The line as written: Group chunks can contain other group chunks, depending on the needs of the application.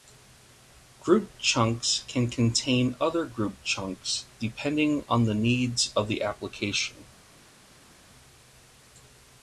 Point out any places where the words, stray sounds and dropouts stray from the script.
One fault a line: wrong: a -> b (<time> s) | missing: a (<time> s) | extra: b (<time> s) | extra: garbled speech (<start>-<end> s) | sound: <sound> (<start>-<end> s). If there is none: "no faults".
no faults